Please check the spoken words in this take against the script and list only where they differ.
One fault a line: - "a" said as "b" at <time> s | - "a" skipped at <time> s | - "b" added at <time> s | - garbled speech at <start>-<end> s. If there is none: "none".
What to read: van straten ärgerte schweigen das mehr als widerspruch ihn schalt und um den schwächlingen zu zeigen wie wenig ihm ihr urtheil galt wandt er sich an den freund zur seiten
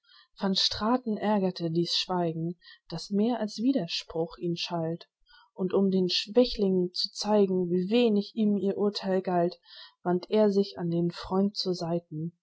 - "dies" added at 1.7 s